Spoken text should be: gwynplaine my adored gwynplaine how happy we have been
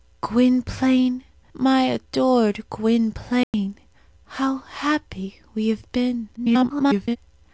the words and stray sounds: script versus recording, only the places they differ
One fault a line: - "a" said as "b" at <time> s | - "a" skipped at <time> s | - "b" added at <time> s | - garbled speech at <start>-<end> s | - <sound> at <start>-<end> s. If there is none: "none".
- dropout at 3.4-3.5 s
- garbled speech at 6.4-7.2 s